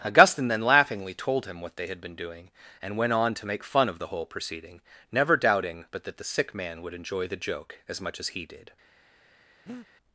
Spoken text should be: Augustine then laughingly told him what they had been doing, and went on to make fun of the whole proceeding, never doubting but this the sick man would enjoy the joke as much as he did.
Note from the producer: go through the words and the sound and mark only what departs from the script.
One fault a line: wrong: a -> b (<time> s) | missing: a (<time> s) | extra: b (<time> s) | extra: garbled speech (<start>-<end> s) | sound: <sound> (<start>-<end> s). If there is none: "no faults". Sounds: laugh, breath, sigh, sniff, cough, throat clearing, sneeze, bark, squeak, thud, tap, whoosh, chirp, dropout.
wrong: this -> that (6.0 s)
sound: breath (9.7-9.9 s)